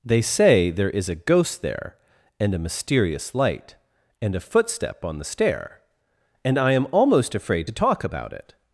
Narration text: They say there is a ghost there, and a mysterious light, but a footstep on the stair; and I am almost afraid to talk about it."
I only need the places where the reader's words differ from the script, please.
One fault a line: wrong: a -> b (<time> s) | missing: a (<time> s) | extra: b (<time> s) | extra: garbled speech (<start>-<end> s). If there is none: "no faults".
wrong: but -> and (4.2 s)